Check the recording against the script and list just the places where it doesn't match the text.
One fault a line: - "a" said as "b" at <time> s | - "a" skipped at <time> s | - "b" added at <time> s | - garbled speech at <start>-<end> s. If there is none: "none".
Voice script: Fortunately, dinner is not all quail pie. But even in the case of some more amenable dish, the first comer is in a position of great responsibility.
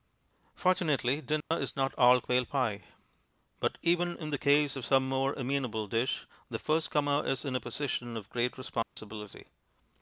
none